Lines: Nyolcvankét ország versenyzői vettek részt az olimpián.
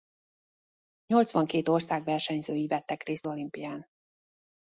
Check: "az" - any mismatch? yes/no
yes